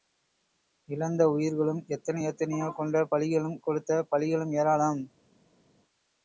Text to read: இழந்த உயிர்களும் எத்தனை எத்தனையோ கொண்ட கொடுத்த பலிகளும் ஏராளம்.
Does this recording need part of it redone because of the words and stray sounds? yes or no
yes